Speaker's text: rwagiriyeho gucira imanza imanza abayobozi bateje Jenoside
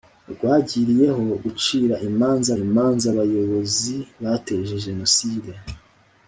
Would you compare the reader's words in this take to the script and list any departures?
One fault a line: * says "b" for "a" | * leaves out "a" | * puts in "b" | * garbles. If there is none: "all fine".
all fine